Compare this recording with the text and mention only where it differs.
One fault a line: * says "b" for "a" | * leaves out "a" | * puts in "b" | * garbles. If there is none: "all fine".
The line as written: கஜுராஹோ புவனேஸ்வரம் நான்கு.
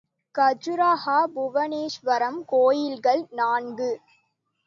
* puts in "கோயில்கள்"